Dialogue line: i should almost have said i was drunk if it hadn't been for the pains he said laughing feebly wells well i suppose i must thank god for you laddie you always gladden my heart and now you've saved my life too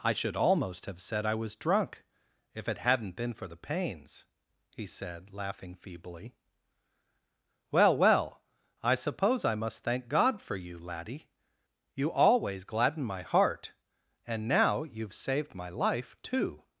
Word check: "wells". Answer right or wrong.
wrong